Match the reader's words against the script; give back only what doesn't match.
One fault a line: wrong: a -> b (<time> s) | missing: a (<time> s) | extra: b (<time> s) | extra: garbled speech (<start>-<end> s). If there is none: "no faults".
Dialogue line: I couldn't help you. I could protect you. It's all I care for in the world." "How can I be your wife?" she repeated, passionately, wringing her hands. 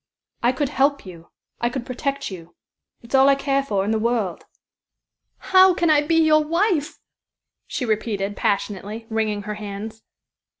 wrong: couldn't -> could (0.5 s)